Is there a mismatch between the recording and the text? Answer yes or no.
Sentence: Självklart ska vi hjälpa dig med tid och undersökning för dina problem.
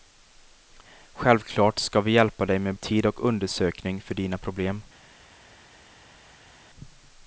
no